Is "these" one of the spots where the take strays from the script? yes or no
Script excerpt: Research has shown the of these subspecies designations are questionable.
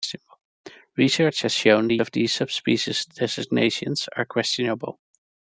no